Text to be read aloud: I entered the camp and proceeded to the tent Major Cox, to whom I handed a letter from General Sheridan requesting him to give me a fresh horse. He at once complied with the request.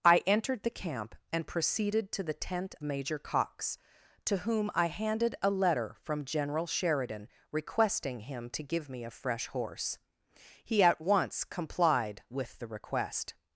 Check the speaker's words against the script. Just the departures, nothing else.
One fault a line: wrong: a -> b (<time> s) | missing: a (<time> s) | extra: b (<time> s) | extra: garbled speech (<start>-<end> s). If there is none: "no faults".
no faults